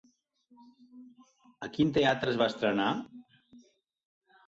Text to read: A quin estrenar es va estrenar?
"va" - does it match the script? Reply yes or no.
yes